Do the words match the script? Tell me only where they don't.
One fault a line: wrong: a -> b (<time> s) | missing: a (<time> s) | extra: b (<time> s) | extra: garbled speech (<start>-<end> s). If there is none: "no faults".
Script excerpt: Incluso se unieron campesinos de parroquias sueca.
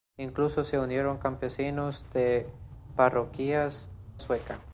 no faults